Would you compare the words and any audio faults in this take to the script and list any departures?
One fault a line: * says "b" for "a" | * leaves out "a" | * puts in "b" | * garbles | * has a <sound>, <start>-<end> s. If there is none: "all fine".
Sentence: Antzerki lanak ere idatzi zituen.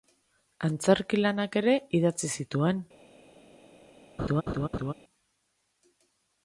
* has a laugh, 4.2-4.9 s